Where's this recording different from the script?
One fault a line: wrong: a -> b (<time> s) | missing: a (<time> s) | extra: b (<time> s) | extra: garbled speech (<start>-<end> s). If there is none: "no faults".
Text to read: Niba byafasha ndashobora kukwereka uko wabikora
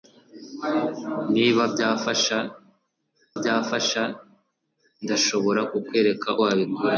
extra: byafasha (3.4 s)
missing: uko (6.3 s)